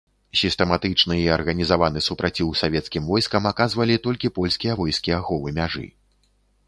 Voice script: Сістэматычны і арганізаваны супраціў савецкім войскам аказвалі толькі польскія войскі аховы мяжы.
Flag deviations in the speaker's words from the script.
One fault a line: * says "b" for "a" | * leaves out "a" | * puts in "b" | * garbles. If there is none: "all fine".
all fine